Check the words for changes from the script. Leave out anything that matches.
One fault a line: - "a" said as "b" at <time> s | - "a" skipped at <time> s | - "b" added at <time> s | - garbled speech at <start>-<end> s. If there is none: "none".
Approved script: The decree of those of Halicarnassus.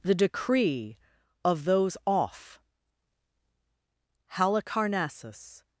- "of" said as "off" at 2.1 s